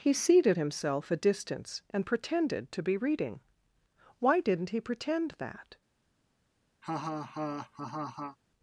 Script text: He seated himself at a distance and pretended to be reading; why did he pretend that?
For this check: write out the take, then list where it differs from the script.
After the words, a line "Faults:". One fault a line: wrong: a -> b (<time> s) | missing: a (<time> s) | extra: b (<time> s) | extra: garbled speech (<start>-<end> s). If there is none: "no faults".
He seated himself a distance and pretended to be reading; why didn't he pretend that?
Faults:
missing: at (1.1 s)
wrong: did -> didn't (4.4 s)